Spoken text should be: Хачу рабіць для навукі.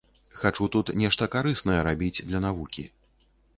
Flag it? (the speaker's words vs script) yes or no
yes